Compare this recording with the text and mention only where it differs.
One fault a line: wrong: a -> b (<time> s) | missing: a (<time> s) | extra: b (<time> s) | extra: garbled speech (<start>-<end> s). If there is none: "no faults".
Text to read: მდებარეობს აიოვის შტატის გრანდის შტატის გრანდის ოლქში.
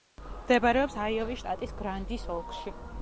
missing: შტატის გრანდის (2.3 s)